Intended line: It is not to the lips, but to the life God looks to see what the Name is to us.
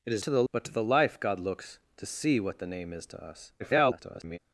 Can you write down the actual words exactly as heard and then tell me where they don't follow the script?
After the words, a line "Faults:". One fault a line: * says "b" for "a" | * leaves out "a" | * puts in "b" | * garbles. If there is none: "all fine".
It is to the but to the life God looks to see what the Name is to us. [garbled]
Faults:
* leaves out "not"
* leaves out "lips"
* garbles